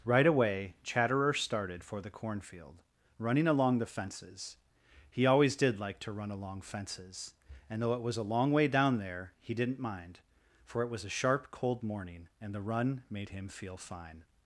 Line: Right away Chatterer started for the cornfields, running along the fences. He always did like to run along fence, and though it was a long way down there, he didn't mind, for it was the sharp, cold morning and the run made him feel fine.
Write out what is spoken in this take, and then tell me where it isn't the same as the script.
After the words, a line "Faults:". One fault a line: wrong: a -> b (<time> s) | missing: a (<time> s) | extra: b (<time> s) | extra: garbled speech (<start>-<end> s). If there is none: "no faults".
Right away Chatterer started for the cornfield, running along the fences. He always did like to run along fences, and though it was a long way down there, he didn't mind, for it was a sharp, cold morning and the run made him feel fine.
Faults:
wrong: cornfields -> cornfield (2.1 s)
wrong: fence -> fences (6.6 s)
wrong: the -> a (11.1 s)